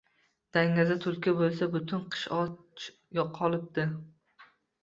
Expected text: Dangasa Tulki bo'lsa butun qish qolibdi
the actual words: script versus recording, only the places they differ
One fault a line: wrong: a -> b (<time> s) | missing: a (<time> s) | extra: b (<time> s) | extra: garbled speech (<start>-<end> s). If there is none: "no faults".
extra: och (2.4 s)